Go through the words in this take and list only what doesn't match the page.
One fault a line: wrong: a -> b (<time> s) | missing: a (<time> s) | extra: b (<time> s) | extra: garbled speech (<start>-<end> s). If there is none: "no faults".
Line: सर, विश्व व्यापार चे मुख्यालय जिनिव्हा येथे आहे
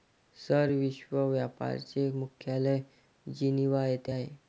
no faults